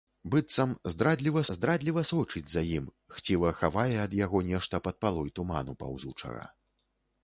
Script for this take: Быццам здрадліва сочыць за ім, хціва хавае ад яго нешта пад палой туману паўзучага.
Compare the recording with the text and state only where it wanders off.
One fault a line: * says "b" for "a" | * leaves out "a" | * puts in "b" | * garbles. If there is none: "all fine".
* puts in "здрадліва"